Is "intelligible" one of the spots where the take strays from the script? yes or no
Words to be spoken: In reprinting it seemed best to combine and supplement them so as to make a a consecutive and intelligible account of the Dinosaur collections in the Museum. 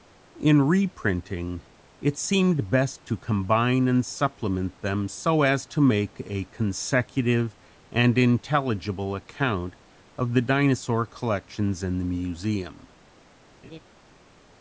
no